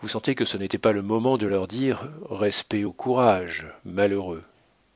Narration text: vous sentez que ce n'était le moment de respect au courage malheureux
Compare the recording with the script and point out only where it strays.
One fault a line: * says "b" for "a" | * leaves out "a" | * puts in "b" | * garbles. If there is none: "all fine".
* puts in "pas"
* puts in "leur dire"